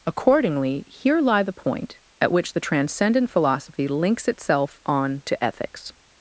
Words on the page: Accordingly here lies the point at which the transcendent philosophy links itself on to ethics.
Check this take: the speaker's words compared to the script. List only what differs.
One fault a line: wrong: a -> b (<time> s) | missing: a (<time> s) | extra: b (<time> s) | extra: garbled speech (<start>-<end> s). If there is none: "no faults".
wrong: lies -> lie (1.2 s)